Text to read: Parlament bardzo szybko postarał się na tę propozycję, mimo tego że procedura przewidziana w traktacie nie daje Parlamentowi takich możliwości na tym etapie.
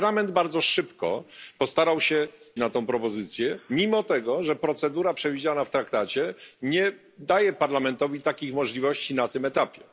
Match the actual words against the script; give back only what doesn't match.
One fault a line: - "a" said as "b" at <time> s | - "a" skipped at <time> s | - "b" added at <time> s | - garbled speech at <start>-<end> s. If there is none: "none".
none